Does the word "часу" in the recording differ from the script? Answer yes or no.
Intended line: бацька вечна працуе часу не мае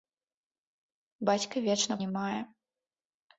yes